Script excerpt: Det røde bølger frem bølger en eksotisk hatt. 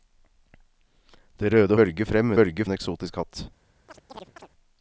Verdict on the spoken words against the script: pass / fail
pass